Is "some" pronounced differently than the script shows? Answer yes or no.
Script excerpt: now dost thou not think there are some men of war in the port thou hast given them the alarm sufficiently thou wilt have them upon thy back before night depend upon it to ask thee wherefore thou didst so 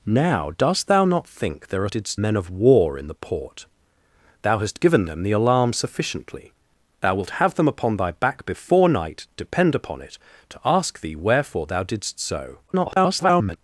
yes